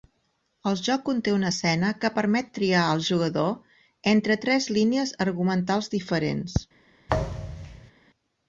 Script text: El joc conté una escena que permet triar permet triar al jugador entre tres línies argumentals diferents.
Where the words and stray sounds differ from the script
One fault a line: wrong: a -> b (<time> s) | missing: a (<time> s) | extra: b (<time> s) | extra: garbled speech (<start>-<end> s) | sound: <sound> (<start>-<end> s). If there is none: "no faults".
missing: permet triar (2.8 s)
sound: thud (7.1-7.9 s)